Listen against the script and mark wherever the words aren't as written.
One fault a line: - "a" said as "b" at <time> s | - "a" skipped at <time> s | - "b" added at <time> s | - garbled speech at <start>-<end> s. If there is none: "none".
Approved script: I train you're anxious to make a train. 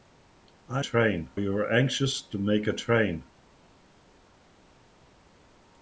none